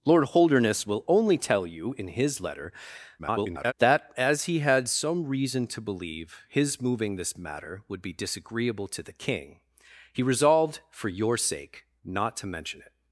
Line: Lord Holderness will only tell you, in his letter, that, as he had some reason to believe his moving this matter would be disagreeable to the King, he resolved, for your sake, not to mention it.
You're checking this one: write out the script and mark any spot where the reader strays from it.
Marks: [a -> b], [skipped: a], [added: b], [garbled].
Lord Holderness will only tell you, in his letter, [garbled] that, as he had some reason to believe his moving this matter would be disagreeable to the King, he resolved, for your sake, not to mention it.